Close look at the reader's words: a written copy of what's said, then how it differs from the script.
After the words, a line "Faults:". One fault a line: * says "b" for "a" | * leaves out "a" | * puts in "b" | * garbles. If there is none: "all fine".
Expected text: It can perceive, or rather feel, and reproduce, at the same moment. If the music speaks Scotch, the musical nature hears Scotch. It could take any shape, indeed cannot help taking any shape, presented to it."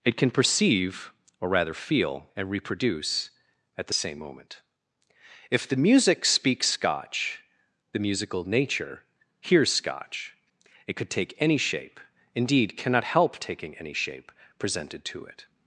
It can perceive, or rather feel, and reproduce, at the same moment. If the music speaks Scotch, the musical nature hears Scotch. It could take any shape, indeed cannot help taking any shape, presented to it."
Faults:
all fine